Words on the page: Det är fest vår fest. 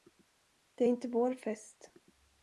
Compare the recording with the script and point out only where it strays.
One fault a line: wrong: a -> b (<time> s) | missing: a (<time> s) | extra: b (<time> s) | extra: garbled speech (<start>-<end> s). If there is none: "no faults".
wrong: fest -> inte (0.9 s)